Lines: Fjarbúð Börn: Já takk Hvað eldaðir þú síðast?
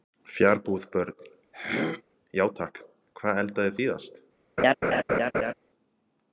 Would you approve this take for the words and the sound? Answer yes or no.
no